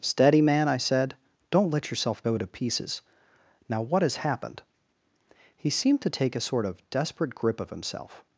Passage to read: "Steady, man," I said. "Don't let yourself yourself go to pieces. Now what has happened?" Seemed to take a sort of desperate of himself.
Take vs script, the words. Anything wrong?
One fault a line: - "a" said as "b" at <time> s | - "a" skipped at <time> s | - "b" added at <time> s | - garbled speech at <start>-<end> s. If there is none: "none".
- "yourself" skipped at 2.2 s
- "He" added at 5.6 s
- "grip" added at 7.3 s